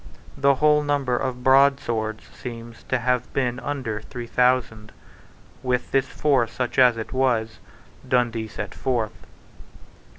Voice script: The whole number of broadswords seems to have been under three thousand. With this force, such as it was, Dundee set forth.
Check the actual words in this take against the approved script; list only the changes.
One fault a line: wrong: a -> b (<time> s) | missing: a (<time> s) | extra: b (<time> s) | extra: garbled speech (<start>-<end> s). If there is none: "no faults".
no faults